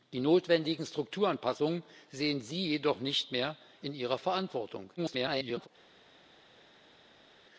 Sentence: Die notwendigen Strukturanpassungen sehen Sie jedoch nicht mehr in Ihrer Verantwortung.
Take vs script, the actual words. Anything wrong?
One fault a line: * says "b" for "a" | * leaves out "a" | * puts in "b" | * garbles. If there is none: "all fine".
* garbles